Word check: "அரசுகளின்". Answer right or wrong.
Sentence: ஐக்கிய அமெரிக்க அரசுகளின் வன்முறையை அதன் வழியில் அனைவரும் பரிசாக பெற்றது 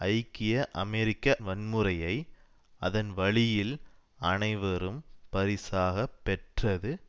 wrong